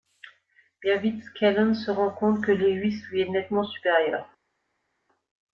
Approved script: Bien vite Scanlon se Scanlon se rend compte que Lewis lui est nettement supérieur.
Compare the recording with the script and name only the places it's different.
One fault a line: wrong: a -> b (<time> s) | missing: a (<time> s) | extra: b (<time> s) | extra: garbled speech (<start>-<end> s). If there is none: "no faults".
missing: Scanlon se (1.9 s)